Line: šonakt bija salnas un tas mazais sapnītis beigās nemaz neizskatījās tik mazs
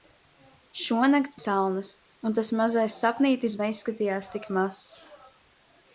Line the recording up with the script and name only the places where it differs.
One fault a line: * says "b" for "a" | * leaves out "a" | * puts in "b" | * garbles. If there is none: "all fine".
* leaves out "bija"
* leaves out "beigās nemaz"